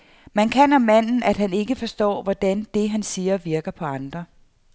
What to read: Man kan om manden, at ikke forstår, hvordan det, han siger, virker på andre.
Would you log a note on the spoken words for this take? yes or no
yes